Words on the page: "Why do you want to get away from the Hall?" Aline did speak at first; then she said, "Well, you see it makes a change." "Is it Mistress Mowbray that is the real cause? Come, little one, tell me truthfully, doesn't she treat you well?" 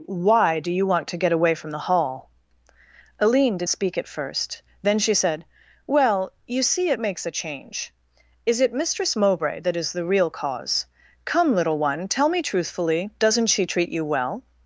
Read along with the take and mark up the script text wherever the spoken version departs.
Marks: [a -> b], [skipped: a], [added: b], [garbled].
"Why do you want to get away from the Hall?" Aline did speak at first; then she said, "Well, you see it makes a change." "Is it Mistress Mowbray that is the real cause? Come, little one, tell me truthfully, doesn't she treat you well?"